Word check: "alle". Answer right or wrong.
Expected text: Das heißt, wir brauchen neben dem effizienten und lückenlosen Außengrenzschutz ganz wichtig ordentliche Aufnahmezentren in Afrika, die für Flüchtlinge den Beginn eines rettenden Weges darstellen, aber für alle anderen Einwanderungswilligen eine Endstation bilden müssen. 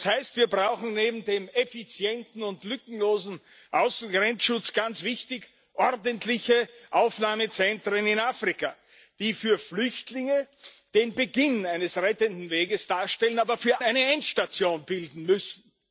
wrong